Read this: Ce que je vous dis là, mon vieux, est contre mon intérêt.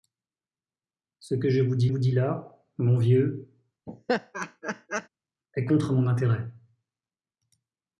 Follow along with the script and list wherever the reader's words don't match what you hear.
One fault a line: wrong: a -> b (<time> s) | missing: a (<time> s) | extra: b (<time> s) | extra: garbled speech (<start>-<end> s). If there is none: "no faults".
extra: vous dis (1.8 s)